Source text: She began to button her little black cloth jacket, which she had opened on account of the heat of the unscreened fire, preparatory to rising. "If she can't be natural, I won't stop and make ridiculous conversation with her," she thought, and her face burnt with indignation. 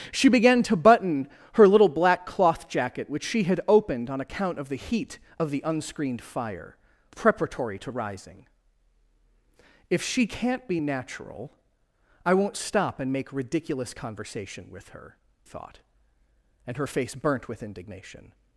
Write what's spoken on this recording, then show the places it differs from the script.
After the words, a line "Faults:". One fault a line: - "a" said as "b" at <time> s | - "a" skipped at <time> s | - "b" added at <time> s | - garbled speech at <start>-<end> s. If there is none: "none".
She began to button her little black cloth jacket, which she had opened on account of the heat of the unscreened fire, preparatory to rising. "If she can't be natural, I won't stop and make ridiculous conversation with her," thought, and her face burnt with indignation.
Faults:
- "she" skipped at 15.2 s